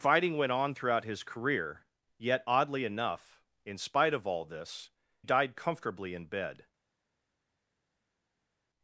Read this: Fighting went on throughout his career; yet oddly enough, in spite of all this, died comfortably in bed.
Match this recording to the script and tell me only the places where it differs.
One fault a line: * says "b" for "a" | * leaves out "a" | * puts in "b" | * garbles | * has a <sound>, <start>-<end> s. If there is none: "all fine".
all fine